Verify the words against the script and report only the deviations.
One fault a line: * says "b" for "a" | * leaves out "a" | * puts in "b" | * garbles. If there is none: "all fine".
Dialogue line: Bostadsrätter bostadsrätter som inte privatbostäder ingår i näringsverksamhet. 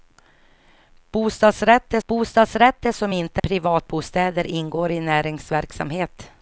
all fine